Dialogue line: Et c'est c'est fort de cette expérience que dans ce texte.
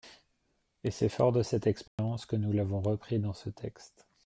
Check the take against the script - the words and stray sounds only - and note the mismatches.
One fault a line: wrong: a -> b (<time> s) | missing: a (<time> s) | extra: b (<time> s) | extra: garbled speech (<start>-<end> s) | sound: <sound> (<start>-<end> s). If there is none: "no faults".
missing: c'est (1.1 s)
sound: dropout (1.9-2.0 s)
extra: nous l'avons repris (2.4 s)